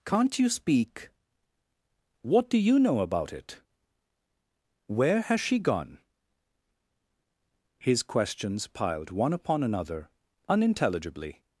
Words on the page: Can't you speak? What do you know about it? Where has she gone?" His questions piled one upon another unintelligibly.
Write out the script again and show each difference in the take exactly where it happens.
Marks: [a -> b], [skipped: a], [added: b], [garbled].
Can't you speak? What do you know about it? Where has she gone?" His questions piled one upon another unintelligibly.